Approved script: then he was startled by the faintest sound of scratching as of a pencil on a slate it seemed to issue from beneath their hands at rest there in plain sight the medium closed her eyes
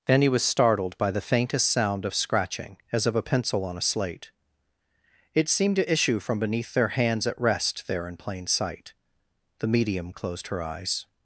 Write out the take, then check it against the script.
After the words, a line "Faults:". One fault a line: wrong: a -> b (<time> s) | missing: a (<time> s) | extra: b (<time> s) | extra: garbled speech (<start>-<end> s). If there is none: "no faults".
then he was startled by the faintest sound of scratching as of a pencil on a slate it seemed to issue from beneath their hands at rest there in plain sight the medium closed her eyes
Faults:
no faults